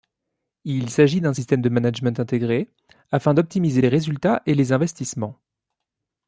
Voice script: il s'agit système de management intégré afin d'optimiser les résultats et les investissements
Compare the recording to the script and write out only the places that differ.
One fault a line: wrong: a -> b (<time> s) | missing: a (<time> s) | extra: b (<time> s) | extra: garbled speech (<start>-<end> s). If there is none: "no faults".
extra: d'un (1.2 s)